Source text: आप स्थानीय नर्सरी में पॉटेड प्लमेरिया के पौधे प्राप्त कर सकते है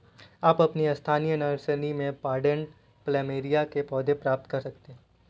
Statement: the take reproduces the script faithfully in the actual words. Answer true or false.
false